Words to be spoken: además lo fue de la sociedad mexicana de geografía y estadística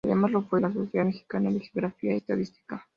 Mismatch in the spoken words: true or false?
true